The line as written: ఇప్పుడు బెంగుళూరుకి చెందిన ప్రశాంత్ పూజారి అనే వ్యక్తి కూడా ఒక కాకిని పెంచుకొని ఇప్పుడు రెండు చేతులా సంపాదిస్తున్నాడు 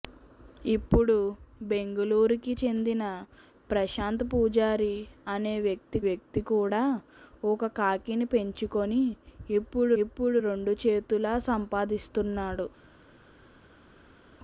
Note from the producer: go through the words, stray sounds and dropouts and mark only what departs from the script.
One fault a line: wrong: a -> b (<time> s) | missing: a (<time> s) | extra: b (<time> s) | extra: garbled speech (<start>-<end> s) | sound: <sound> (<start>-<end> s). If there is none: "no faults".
extra: వ్యక్తి (6.1 s)
extra: ఇప్పుడు (10.0 s)